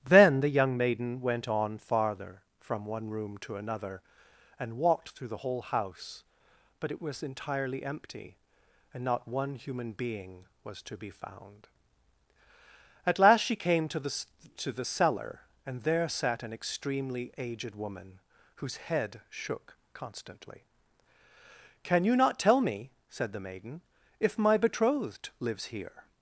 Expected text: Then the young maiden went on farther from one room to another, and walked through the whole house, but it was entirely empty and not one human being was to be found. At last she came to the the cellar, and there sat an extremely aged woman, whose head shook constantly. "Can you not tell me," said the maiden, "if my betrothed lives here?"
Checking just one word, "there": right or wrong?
right